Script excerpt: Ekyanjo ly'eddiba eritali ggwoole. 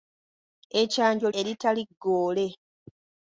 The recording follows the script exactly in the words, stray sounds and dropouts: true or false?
false